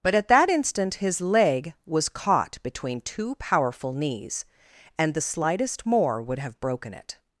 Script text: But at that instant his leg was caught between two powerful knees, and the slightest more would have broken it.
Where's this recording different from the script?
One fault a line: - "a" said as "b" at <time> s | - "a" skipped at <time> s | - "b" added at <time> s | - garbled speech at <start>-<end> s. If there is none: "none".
none